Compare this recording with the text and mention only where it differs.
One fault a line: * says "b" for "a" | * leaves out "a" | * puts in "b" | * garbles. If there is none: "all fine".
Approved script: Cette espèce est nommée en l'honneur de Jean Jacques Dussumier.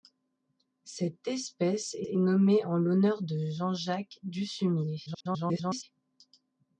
* puts in "est"
* garbles